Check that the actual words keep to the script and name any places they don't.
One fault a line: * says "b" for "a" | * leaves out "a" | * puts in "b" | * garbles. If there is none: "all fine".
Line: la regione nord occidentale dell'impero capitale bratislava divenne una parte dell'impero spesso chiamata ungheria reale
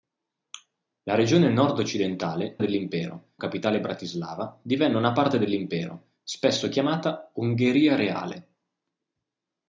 all fine